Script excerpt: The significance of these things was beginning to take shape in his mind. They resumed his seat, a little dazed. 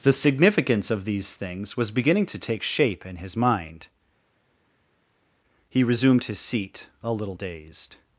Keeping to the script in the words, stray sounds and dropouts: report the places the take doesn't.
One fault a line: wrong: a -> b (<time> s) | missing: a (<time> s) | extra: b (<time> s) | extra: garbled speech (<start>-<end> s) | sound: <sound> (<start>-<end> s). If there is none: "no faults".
wrong: They -> He (5.7 s)